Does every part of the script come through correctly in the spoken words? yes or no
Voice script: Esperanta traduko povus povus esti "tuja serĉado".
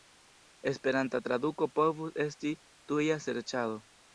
no